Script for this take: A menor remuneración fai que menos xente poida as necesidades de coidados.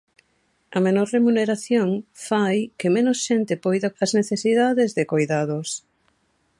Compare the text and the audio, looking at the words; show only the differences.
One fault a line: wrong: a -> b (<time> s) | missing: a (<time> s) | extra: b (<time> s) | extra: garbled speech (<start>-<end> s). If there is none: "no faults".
no faults